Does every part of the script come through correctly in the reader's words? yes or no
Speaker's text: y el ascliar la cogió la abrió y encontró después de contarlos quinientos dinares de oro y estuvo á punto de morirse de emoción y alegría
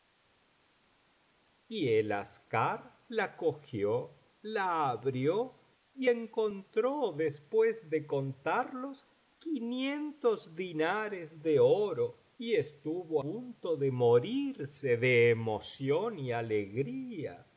no